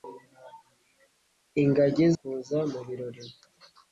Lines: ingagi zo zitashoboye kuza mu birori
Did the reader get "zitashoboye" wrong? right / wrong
wrong